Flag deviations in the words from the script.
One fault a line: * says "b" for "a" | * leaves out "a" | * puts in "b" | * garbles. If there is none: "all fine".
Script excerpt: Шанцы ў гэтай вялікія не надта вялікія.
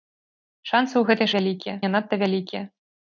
all fine